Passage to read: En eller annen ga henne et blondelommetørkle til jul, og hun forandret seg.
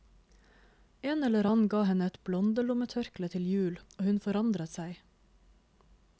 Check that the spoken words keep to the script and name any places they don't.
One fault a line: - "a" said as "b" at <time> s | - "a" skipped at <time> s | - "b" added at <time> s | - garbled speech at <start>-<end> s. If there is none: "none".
none